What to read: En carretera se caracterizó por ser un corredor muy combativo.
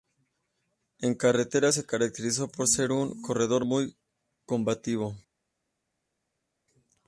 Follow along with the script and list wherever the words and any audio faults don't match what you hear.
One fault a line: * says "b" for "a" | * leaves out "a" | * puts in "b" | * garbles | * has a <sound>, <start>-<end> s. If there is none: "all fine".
all fine